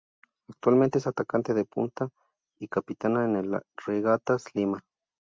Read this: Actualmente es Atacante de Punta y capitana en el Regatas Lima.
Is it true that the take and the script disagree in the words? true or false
false